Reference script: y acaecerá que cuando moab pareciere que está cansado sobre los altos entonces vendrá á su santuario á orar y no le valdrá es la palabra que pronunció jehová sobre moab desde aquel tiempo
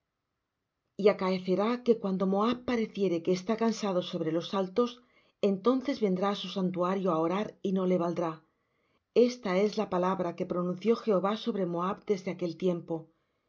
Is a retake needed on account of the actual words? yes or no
yes